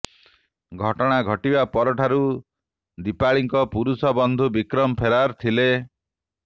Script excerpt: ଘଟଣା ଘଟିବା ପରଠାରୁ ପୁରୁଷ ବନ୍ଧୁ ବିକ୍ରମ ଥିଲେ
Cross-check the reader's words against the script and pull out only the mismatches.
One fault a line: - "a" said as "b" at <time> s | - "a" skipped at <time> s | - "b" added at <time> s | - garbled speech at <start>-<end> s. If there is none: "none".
- "ଦୀପାଳିଙ୍କ" added at 3.0 s
- "ଫେରାର" added at 5.0 s